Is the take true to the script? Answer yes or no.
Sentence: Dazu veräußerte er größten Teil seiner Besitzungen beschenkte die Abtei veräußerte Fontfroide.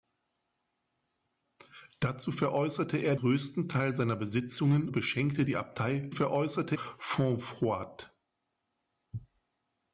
yes